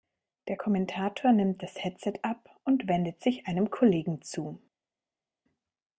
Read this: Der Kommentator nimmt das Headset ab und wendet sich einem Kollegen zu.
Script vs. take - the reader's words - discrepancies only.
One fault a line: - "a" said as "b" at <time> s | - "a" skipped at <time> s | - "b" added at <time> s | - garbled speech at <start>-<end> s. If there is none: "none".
none